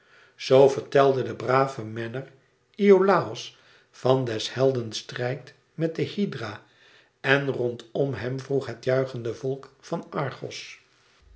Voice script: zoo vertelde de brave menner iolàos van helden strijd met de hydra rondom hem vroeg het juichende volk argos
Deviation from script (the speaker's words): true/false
true